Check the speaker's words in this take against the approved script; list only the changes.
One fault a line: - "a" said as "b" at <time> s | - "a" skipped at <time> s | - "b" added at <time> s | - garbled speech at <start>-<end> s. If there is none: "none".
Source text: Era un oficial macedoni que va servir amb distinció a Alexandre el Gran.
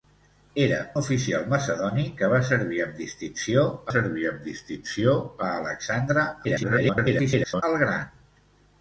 - "un" skipped at 0.8 s
- "servir amb distinció" added at 3.9 s
- garbled speech at 6.4-7.6 s